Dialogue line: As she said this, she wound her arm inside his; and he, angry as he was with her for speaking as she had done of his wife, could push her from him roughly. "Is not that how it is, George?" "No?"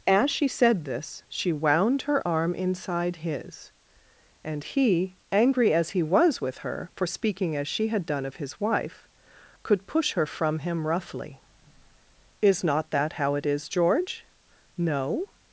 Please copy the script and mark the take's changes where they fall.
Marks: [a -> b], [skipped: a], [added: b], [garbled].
As she said this, she wound her arm inside his; and he, angry as he was with her for speaking as she had done of his wife, could push her from him roughly. "Is not that how it is, George?" "No?"